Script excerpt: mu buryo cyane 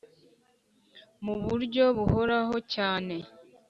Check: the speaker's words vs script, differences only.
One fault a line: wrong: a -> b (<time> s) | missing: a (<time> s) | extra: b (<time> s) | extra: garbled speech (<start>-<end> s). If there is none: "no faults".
extra: buhoraho (2.0 s)